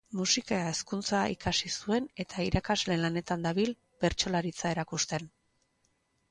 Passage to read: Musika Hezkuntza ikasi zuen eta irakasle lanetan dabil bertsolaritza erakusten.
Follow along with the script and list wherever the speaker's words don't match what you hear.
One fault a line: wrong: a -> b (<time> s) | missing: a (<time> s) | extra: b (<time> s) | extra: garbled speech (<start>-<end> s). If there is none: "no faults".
no faults